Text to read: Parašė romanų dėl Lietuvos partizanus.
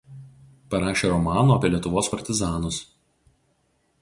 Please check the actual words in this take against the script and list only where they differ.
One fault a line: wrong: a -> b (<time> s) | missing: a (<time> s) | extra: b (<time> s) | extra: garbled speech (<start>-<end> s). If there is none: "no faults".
wrong: dėl -> apie (1.5 s)